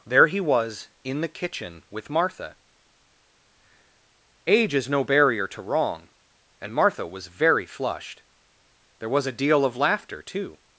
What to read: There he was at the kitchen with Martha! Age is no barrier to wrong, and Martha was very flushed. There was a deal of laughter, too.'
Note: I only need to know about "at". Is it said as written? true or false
false